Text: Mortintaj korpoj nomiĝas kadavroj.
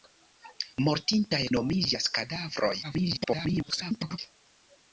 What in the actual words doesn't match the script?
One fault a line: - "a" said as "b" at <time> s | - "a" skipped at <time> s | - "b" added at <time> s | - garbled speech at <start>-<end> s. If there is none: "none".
- "korpoj" skipped at 1.4 s
- garbled speech at 2.8-4.2 s